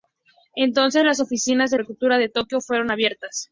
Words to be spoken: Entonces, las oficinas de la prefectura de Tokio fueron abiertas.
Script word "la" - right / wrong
wrong